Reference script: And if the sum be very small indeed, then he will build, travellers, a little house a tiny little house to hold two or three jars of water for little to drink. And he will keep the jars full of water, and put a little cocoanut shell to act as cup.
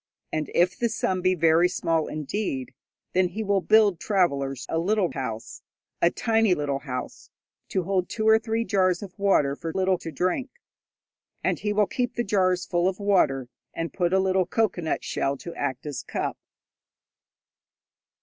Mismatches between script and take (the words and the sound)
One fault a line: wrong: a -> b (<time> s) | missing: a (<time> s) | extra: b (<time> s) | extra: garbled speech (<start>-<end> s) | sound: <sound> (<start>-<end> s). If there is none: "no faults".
no faults